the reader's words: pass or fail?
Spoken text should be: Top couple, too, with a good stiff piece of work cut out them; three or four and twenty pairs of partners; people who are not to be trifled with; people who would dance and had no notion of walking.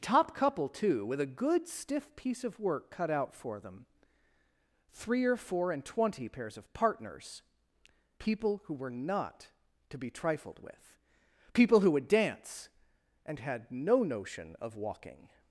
fail